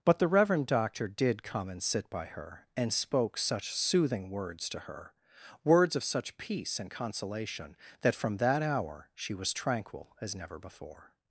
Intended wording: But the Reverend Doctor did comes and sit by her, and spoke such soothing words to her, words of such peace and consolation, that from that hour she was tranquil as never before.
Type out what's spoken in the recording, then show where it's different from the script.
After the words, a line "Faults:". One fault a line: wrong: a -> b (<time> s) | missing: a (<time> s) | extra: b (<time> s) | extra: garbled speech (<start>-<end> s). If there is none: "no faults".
But the Reverend Doctor did come and sit by her, and spoke such soothing words to her, words of such peace and consolation, that from that hour she was tranquil as never before.
Faults:
wrong: comes -> come (1.4 s)